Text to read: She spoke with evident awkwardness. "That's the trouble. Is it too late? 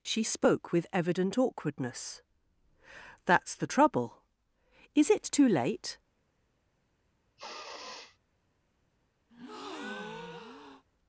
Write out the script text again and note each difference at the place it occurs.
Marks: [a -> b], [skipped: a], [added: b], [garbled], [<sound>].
She spoke with evident awkwardness. "That's the trouble. Is it too late? [sniff] [breath]